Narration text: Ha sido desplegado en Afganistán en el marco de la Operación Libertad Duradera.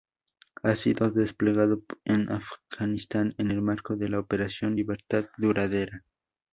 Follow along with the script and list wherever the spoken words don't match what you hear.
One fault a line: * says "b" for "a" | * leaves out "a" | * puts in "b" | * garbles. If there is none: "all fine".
all fine